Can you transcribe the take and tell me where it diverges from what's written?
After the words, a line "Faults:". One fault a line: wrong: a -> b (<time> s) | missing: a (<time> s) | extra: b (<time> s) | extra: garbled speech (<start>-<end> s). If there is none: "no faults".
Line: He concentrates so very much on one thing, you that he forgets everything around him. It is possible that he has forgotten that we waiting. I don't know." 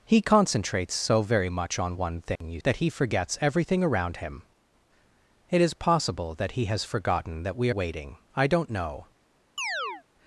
He concentrates so very much on one thing, you that he forgets everything around him. It is possible that he has forgotten that we waiting. I don't know."
Faults:
no faults